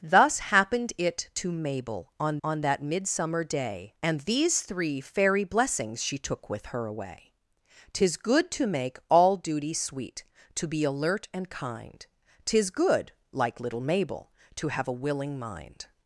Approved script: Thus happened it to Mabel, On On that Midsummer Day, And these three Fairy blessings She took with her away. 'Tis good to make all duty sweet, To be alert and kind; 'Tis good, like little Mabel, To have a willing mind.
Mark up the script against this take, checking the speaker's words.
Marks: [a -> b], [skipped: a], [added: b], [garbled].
Thus happened it to Mabel, On On that Midsummer Day, And these three Fairy blessings She took with her away. 'Tis good to make all duty sweet, To be alert and kind; 'Tis good, like little Mabel, To have a willing mind.